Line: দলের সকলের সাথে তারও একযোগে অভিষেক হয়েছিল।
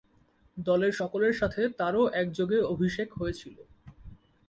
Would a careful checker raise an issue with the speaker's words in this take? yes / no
no